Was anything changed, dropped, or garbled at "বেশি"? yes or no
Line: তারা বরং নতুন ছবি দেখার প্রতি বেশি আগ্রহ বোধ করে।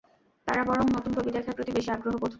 no